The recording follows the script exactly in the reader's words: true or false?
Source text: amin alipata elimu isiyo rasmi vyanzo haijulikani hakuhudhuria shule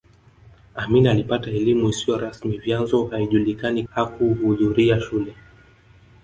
true